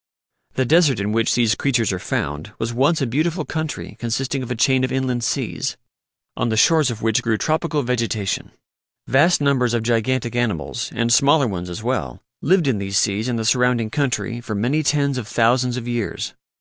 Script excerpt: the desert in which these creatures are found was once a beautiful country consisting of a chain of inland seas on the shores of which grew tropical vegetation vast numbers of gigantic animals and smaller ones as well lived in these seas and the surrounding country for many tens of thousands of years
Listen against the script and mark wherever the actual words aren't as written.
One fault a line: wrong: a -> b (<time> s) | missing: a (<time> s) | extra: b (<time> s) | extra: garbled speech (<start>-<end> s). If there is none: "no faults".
no faults